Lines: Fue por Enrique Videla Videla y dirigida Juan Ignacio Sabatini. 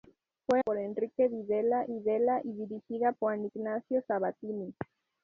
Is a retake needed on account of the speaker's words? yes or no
no